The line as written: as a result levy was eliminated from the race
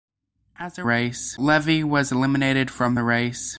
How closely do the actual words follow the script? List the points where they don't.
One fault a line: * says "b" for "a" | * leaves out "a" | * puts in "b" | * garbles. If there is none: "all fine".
* says "race" for "result"